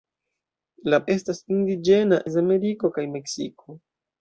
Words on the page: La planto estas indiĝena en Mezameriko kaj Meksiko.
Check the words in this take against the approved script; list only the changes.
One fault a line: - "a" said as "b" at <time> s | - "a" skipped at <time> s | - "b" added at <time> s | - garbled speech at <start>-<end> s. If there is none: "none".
- "planto" skipped at 1.0 s
- "en" skipped at 2.2 s